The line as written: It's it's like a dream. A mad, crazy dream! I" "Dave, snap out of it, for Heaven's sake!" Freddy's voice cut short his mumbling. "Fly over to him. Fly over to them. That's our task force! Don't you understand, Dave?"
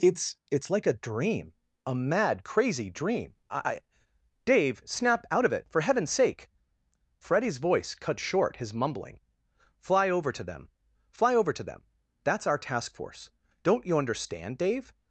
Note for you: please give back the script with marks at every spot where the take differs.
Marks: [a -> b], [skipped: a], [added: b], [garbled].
It's it's like a dream. A mad, crazy dream! I" "Dave, snap out of it, for Heaven's sake!" Freddy's voice cut short his mumbling. "Fly over to [him. -> them] Fly over to them. That's our task force! Don't you understand, Dave?"